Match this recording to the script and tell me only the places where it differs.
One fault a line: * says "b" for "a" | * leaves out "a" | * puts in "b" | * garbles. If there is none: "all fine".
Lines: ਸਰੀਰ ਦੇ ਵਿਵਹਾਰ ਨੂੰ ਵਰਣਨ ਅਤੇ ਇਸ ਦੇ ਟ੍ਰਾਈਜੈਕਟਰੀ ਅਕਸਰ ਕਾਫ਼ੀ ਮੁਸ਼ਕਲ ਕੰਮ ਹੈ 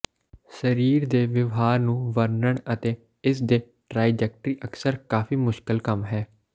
all fine